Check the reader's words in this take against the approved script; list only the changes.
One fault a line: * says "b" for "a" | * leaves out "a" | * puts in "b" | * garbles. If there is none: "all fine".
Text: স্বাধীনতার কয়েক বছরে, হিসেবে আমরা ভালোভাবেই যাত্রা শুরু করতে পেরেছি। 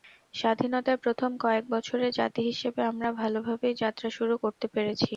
* puts in "প্রথম"
* puts in "জাতি"